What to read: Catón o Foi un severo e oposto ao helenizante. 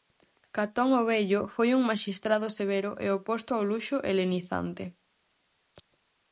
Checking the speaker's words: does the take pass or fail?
fail